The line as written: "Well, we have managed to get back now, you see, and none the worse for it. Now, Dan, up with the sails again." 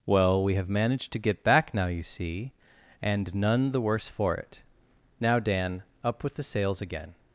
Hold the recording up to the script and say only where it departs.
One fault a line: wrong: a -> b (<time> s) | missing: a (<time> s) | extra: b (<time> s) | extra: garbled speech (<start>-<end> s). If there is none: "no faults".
no faults